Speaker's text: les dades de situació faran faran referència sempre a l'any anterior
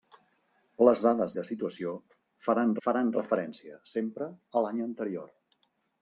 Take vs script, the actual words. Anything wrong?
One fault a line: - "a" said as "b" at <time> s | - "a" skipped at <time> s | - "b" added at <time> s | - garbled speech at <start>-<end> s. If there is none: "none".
none